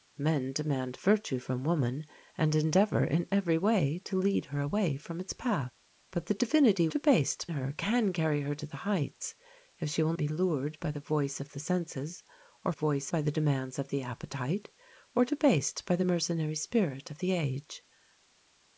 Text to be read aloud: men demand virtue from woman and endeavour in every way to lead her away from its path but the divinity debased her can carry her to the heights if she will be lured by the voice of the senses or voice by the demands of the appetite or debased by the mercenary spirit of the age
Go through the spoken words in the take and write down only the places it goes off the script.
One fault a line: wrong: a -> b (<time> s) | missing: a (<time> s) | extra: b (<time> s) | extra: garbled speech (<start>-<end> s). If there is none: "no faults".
no faults